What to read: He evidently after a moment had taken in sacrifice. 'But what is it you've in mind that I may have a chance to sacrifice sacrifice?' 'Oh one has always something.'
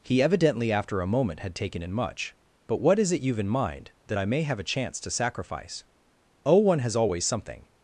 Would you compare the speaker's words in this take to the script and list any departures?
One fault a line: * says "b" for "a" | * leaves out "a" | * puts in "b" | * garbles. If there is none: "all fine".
* says "much" for "sacrifice"
* leaves out "sacrifice"